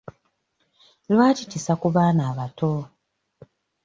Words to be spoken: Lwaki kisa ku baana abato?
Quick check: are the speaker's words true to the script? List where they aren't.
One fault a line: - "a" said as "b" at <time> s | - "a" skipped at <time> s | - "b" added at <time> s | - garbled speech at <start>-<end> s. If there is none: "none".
none